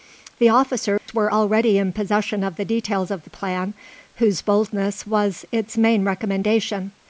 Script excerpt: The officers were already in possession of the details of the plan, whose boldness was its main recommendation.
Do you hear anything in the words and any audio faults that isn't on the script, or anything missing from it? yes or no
yes